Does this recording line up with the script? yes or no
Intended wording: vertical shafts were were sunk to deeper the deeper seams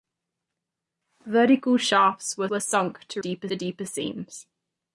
yes